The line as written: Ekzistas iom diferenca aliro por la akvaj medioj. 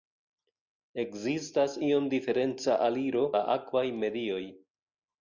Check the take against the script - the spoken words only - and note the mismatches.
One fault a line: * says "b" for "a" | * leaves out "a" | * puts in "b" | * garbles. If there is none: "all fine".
* leaves out "por"